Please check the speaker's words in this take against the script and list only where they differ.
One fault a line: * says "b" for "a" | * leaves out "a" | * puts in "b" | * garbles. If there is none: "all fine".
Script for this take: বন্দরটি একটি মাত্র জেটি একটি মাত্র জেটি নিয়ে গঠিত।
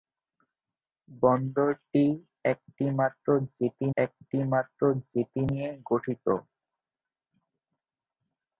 all fine